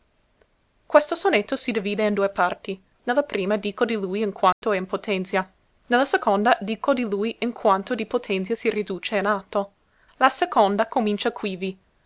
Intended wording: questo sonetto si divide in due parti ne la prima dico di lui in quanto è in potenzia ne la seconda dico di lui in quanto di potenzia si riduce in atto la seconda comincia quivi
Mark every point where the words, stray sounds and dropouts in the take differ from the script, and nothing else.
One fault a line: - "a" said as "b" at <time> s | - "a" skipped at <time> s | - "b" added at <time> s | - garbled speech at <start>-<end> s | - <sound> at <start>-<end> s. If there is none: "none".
- dropout at 4.5-4.6 s